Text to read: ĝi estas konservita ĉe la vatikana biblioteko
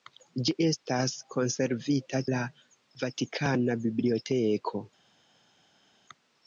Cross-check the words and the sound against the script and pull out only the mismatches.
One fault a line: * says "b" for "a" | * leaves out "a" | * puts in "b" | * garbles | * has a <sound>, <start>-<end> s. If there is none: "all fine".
* leaves out "ĉe"